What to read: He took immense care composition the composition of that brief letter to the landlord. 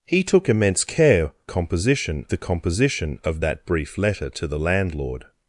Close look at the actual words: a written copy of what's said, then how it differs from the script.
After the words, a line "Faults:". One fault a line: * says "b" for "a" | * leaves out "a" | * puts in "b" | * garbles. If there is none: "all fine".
He took immense care composition the composition of that brief letter to the landlord.
Faults:
all fine